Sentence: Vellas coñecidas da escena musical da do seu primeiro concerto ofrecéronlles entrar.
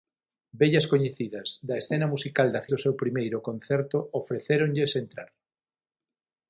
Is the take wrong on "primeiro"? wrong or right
right